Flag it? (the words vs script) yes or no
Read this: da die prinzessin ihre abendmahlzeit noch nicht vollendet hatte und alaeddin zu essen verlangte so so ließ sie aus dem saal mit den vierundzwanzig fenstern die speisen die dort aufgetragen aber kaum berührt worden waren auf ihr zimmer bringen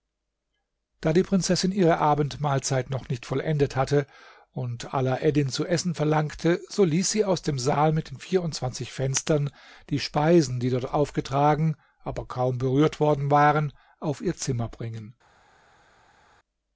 yes